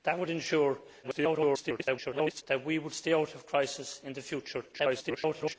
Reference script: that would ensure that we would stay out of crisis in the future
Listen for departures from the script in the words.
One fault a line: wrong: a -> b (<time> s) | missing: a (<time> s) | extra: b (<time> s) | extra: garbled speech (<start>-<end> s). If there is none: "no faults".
extra: garbled speech (1.0-2.4 s)
extra: garbled speech (4.7-5.6 s)